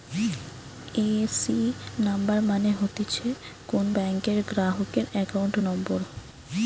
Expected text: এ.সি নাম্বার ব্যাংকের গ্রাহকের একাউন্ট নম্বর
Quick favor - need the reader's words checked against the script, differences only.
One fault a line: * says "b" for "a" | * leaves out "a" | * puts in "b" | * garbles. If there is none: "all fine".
* puts in "মানে হতিছে কোন"